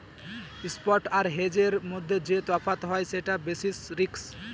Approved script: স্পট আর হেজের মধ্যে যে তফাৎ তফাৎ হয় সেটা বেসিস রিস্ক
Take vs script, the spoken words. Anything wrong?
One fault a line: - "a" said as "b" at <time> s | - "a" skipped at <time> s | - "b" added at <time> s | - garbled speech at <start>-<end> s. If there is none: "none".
- "তফাৎ" skipped at 2.8 s